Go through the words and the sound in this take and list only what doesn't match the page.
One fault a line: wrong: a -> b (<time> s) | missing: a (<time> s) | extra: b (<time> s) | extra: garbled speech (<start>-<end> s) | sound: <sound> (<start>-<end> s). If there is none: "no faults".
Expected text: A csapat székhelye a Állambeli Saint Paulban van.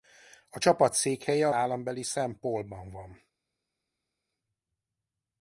no faults